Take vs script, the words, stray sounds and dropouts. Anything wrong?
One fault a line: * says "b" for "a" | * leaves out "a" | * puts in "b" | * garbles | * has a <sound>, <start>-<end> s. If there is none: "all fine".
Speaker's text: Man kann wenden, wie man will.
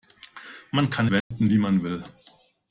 * has a dropout, 1.2-1.3 s